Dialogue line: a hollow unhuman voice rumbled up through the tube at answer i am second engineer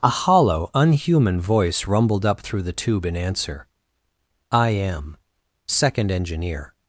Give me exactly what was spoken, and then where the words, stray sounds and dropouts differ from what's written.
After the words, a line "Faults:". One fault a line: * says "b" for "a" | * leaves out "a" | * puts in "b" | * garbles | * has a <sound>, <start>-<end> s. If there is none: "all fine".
a hollow unhuman voice rumbled up through the tube in answer i am second engineer
Faults:
* says "in" for "at"